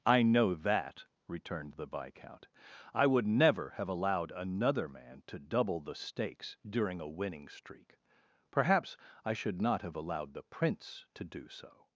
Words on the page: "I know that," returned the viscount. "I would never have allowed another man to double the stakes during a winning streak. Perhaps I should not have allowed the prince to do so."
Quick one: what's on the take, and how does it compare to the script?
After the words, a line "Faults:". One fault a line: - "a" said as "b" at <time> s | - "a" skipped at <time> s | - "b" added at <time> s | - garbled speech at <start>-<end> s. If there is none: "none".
"I know that," returned the viscount. "I would never have allowed another man to double the stakes during a winning streak. Perhaps I should not have allowed the prince to do so."
Faults:
none